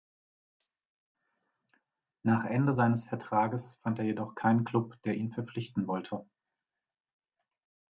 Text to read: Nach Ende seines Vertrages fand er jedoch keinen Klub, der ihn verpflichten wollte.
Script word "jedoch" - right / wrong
right